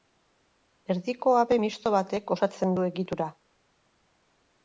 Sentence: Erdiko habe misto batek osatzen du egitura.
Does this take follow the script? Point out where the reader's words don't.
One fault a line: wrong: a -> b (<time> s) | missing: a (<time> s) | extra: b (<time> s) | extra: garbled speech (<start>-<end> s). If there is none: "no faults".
no faults